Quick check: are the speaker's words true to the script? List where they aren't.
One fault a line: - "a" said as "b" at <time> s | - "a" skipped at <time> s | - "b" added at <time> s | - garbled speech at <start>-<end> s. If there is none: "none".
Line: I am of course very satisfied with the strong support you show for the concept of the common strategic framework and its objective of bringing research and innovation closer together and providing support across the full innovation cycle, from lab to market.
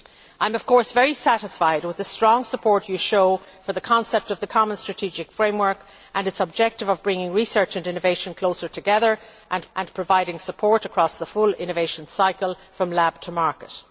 - "and" added at 9.8 s